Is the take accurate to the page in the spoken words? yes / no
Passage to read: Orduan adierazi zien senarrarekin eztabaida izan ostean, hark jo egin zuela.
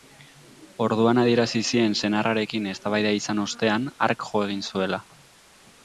yes